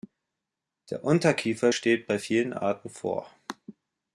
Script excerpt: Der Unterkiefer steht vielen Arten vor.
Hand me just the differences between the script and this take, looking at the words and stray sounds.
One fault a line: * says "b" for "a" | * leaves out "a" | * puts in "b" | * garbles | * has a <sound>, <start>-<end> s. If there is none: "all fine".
* puts in "bei"